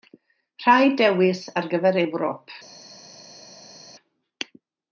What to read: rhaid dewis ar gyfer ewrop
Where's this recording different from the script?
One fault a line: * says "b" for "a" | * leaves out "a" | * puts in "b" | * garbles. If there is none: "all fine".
all fine